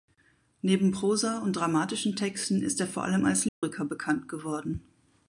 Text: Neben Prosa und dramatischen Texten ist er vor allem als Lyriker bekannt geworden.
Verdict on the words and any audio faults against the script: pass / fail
fail